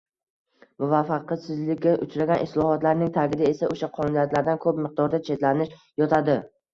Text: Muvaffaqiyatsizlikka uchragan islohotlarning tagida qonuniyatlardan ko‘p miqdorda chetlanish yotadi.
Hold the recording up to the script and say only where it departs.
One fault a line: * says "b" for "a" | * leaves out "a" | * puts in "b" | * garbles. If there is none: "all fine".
* puts in "esa o‘sha"